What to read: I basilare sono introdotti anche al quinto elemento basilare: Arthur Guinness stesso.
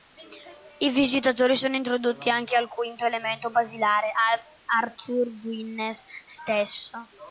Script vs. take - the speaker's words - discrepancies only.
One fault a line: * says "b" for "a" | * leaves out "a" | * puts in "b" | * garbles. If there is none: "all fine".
* says "visitatori" for "basilare"